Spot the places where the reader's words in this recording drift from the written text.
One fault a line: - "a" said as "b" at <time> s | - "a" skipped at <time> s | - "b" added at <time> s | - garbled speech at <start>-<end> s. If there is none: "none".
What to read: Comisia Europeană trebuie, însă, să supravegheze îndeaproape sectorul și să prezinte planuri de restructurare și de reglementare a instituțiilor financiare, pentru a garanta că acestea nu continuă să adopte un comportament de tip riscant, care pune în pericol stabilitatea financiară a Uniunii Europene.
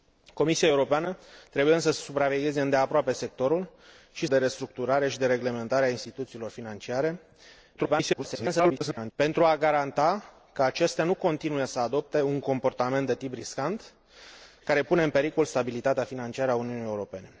- "să prezinte planuri" skipped at 4.3 s
- garbled speech at 7.8-9.1 s